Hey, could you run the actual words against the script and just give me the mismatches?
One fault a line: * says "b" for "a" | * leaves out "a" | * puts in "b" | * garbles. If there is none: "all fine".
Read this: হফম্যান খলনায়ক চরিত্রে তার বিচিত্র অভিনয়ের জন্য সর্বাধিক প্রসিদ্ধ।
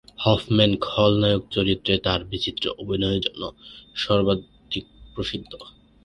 all fine